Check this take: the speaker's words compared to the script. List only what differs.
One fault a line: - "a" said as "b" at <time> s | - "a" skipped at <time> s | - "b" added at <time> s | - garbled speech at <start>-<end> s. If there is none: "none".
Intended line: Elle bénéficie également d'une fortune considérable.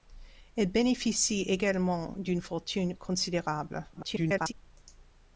- garbled speech at 3.9-4.5 s